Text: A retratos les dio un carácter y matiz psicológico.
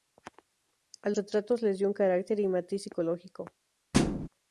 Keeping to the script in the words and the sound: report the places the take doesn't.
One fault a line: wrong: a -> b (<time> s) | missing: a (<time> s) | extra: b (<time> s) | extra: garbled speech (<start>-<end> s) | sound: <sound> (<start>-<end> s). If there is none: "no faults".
sound: thud (3.9-4.3 s)